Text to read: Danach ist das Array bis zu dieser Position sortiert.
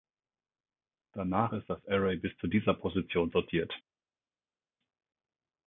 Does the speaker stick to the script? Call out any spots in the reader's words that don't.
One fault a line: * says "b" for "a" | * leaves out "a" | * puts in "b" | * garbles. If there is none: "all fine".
all fine